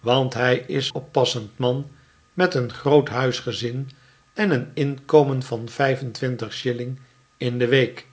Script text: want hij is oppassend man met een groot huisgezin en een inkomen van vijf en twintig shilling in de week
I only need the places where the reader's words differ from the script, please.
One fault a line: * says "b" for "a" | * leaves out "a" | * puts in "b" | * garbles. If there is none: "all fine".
all fine